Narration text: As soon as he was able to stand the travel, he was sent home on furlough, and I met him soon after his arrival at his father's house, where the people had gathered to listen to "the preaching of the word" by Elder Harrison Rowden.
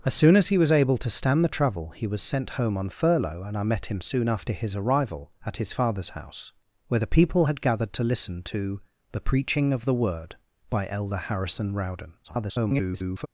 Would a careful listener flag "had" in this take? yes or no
no